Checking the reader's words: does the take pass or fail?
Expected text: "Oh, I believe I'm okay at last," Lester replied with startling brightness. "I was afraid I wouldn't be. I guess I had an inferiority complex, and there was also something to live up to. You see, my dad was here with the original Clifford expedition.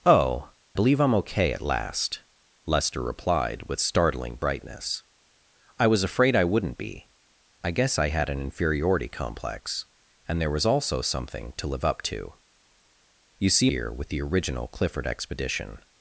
fail